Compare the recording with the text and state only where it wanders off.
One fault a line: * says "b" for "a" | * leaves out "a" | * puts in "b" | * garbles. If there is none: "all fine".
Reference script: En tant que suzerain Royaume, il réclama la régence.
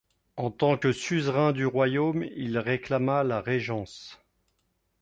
* puts in "du"